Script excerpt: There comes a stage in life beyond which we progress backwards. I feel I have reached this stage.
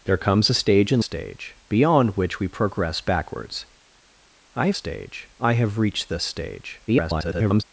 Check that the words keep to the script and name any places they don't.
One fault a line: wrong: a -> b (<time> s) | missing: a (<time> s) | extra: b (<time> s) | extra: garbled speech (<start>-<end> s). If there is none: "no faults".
wrong: life -> stage (1.0 s)
wrong: feel -> stage (4.7 s)
extra: garbled speech (6.9-7.6 s)